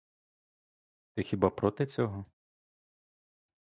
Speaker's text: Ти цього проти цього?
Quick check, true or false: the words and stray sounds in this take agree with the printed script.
false